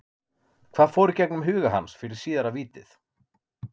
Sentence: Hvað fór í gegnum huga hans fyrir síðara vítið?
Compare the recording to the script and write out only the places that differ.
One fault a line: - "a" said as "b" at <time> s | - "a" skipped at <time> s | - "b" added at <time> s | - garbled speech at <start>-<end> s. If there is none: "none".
none